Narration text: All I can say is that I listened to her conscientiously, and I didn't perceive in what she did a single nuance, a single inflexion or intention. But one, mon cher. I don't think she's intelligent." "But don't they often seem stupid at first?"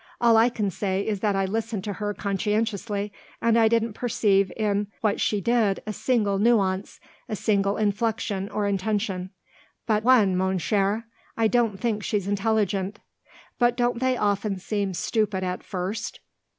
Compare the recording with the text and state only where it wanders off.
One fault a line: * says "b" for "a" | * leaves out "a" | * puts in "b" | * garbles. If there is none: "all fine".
all fine